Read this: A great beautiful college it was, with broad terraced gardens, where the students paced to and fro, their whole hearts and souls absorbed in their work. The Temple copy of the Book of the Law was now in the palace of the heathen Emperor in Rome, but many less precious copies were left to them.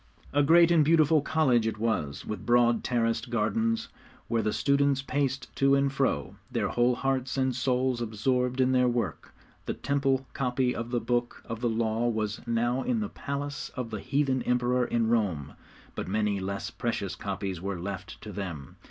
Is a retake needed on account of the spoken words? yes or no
yes